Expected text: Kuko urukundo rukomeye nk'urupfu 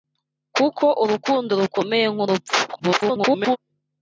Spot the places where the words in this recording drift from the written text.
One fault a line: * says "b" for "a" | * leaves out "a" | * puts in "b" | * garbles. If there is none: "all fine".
* garbles